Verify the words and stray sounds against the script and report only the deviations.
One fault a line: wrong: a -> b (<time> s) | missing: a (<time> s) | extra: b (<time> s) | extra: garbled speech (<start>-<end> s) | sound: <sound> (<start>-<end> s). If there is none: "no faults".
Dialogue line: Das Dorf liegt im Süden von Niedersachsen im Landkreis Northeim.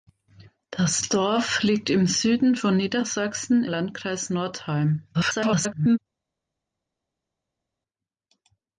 missing: im (3.7 s)
extra: garbled speech (5.1-6.0 s)